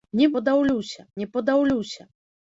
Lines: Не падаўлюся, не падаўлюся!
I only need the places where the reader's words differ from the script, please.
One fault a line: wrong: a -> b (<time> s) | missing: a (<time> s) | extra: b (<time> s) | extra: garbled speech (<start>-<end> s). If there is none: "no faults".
no faults